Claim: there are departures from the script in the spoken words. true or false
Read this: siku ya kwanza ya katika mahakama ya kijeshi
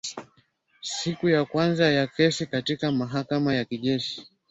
true